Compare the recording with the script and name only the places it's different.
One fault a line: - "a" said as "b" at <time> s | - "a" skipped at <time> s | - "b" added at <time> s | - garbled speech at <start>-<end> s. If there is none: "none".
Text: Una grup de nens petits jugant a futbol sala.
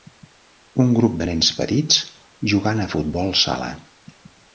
- "Una" said as "Un" at 0.8 s